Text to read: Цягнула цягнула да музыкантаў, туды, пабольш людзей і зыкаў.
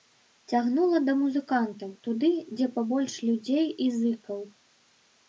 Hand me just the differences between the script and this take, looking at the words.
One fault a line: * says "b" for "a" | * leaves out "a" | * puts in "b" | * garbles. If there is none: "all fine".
* leaves out "цягнула"
* puts in "дзе"